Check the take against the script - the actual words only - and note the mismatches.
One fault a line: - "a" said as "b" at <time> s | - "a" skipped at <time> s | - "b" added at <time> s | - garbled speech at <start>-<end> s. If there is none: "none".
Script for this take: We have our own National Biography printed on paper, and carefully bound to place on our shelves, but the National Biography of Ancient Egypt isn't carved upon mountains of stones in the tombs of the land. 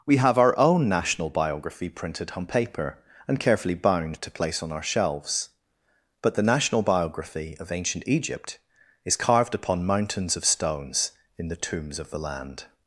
- "isn't" said as "is" at 9.0 s